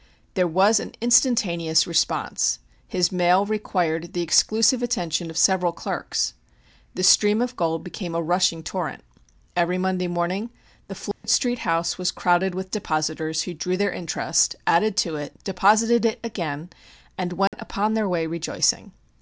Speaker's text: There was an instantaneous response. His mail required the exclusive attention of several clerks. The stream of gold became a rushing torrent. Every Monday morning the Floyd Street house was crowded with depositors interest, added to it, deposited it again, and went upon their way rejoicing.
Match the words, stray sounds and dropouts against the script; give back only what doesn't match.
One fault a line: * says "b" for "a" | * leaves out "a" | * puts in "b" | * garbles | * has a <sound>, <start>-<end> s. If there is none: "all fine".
* has a dropout, 11.1-11.2 s
* puts in "who drew their"
* has a dropout, 17.5-17.5 s